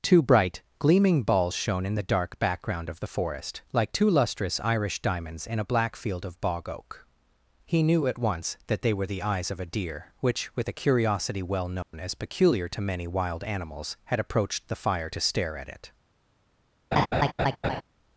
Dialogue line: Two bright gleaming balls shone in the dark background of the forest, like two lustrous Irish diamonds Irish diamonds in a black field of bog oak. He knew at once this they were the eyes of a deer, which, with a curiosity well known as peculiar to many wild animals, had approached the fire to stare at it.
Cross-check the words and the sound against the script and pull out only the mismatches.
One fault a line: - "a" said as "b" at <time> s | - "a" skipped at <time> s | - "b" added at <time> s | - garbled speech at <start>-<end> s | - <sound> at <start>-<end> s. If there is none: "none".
- "Irish diamonds" skipped at 5.5 s
- "this" said as "that" at 8.7 s
- dropout at 11.8-11.9 s
- laugh at 16.9-17.8 s